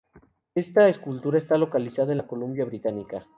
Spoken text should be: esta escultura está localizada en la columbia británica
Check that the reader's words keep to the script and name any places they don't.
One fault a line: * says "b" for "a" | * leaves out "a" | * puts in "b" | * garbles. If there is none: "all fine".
all fine